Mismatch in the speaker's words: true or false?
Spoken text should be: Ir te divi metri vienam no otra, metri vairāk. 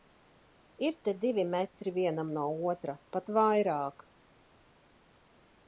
true